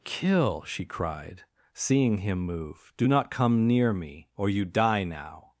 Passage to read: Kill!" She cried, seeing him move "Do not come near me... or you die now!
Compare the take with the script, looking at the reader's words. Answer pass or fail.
pass